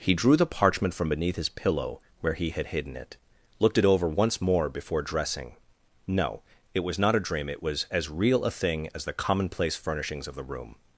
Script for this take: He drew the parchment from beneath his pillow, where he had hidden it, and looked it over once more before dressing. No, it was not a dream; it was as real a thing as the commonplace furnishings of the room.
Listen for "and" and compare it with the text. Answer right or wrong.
wrong